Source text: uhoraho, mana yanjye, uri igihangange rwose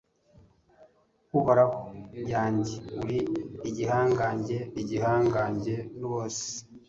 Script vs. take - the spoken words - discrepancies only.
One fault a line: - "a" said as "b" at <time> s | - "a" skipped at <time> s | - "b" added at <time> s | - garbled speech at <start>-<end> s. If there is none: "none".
- "mana" skipped at 1.8 s
- "igihangange" added at 4.8 s